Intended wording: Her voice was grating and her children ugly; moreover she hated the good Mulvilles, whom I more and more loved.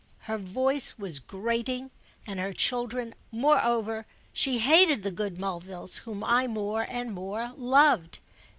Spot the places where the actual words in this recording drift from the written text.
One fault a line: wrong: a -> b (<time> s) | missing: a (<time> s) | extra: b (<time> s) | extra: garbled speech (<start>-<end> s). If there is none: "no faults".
missing: ugly (3.1 s)